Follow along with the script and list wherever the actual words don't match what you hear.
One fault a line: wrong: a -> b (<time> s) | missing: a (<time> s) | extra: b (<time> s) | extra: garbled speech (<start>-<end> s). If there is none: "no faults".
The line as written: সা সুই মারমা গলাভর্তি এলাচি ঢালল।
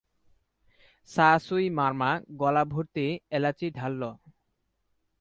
no faults